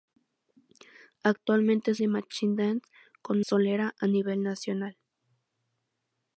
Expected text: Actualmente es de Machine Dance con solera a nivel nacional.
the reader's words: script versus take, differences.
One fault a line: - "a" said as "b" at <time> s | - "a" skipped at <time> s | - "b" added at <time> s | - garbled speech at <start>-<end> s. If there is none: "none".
none